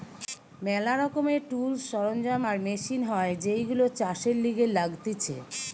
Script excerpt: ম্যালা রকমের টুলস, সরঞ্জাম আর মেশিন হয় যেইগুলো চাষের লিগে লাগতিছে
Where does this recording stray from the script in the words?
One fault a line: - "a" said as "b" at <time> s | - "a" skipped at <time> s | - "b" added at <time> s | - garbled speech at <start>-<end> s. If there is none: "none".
none